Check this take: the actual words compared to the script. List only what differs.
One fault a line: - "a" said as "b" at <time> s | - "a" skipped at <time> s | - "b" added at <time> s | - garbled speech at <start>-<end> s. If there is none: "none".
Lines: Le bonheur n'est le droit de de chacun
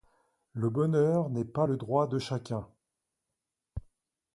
- "pas" added at 1.4 s
- "de" skipped at 2.2 s